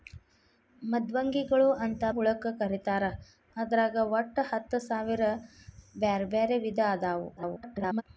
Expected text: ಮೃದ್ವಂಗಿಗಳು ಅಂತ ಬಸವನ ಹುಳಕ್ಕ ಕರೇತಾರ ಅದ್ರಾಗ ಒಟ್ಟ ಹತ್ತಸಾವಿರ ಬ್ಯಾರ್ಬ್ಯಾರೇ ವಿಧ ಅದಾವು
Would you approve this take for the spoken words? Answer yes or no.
no